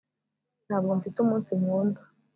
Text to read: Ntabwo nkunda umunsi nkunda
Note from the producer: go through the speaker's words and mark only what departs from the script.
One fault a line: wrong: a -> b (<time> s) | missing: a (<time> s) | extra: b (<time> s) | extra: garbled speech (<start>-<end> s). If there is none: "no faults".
wrong: nkunda -> mfite (1.0 s)